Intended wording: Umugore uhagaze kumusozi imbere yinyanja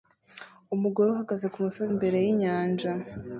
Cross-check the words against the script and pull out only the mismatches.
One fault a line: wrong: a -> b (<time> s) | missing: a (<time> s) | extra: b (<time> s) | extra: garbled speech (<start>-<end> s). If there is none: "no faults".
no faults